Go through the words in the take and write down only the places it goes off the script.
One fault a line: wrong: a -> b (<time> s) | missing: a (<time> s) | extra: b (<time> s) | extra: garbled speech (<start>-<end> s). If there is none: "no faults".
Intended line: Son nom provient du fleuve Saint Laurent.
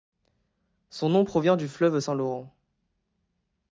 no faults